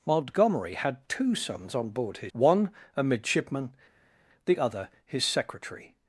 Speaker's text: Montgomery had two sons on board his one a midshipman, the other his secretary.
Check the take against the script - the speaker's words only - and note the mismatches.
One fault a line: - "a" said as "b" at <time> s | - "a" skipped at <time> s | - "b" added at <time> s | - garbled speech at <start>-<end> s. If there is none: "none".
none